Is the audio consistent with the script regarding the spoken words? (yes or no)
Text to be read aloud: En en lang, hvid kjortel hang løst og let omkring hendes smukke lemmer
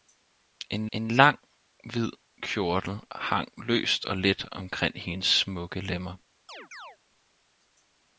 yes